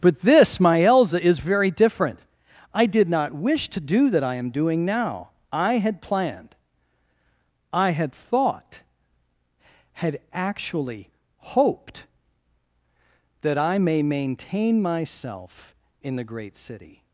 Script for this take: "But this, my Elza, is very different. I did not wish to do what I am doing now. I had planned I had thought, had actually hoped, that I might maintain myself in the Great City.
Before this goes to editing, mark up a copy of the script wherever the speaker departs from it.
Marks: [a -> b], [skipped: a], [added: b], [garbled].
"But this, my Elza, is very different. I did not wish to do [what -> that] I am doing now. I had planned I had thought, had actually hoped, that I [might -> may] maintain myself in the Great City.